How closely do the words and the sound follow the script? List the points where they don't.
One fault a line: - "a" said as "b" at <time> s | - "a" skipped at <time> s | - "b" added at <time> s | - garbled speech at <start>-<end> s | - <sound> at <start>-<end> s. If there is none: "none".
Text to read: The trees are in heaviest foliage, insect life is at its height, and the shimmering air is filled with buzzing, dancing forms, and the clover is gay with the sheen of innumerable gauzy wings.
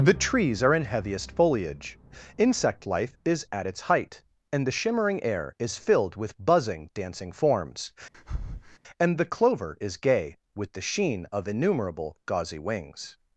- breath at 8.1-8.8 s